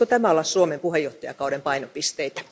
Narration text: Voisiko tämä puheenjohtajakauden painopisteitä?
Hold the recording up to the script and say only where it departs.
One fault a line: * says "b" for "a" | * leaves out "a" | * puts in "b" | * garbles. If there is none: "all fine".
* puts in "olla Suomen"